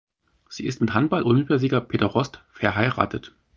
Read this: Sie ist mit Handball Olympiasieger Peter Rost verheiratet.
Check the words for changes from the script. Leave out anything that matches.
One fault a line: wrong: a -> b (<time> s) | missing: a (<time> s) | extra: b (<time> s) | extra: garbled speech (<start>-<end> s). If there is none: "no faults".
no faults